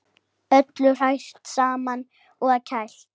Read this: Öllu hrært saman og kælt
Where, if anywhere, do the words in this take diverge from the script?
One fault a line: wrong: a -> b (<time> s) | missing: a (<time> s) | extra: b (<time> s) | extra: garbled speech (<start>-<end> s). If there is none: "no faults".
no faults